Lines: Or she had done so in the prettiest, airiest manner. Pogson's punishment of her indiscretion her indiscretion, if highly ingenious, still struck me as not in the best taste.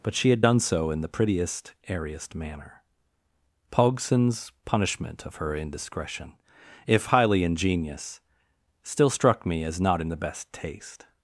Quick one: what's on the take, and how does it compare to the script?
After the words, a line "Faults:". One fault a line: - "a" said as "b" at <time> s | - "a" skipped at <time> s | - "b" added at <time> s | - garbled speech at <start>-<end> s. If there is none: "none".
But she had done so in the prettiest, airiest manner. Pogson's punishment of her indiscretion, if highly ingenious, still struck me as not in the best taste.
Faults:
- "Or" said as "But" at 0.0 s
- "her indiscretion" skipped at 6.3 s